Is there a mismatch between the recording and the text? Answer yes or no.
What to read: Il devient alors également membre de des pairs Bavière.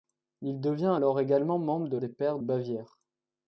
no